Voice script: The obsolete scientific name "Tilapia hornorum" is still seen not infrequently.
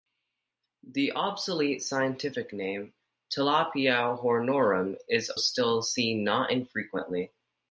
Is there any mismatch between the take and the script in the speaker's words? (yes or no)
no